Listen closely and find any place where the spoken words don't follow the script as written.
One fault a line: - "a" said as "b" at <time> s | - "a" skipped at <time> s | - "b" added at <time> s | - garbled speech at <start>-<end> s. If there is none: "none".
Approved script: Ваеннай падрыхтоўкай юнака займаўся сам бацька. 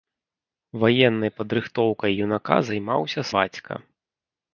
- "сам" skipped at 3.2 s